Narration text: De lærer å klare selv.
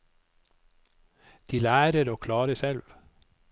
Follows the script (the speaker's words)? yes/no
yes